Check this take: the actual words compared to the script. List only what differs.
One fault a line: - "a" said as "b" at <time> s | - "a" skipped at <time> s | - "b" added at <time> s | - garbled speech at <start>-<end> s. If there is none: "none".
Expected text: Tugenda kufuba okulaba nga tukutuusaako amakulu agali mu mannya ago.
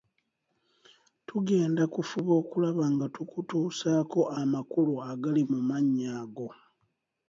none